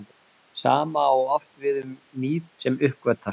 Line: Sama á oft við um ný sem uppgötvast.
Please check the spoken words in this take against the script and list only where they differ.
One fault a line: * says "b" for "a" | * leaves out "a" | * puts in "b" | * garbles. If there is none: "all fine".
all fine